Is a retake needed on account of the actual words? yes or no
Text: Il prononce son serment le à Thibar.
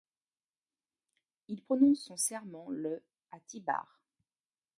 no